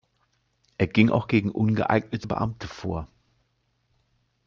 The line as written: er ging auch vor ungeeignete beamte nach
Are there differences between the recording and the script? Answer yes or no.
yes